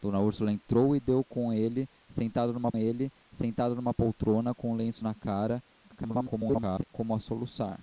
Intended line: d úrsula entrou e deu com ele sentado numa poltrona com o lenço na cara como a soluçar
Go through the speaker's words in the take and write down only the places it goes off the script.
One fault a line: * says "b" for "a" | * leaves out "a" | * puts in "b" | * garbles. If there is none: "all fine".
* puts in "ele sentado numa"
* garbles